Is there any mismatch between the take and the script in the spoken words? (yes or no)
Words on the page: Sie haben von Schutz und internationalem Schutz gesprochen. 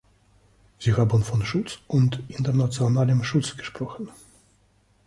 no